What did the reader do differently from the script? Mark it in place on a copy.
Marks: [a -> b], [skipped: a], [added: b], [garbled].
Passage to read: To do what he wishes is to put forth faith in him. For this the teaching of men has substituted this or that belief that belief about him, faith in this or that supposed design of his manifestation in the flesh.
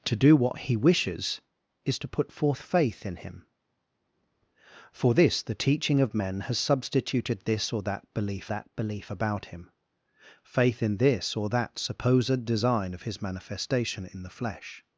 To do what he wishes is to put forth faith in him. For this the teaching of men has substituted this or that belief that belief about him, faith in this or that supposed design of his manifestation in the flesh.